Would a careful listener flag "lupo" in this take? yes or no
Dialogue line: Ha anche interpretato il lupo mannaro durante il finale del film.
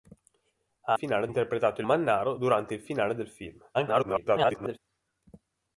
yes